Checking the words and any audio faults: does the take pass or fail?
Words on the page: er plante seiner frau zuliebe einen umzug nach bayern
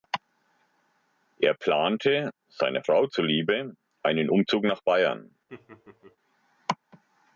fail